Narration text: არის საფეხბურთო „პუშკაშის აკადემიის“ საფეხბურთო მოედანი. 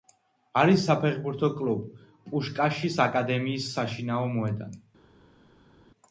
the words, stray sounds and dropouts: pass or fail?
fail